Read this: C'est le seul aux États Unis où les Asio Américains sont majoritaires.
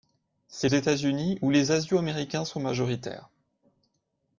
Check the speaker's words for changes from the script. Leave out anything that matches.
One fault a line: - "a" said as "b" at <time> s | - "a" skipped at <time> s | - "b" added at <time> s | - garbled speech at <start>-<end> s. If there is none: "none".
- "le seul aux" skipped at 0.7 s